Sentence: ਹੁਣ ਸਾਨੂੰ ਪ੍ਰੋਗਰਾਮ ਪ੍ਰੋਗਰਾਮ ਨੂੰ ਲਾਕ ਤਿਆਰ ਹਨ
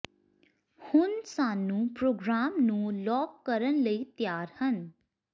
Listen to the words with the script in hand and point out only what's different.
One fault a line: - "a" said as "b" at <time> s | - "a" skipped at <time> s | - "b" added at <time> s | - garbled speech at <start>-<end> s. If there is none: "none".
- "ਪ੍ਰੋਗਰਾਮ" skipped at 2.6 s
- "ਕਰਨ ਲਈ" added at 3.5 s